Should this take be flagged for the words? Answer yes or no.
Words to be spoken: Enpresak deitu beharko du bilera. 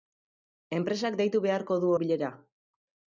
no